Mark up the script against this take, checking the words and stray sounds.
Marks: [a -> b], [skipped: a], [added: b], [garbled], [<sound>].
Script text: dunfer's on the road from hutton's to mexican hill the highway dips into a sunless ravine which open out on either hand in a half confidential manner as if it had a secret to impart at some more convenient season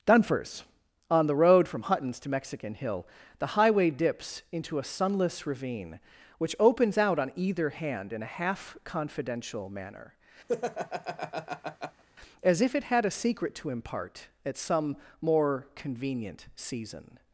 dunfer's on the road from hutton's to mexican hill the highway dips into a sunless ravine which [open -> opens] out on either hand in a half confidential manner [laugh] as if it had a secret to impart at some more convenient season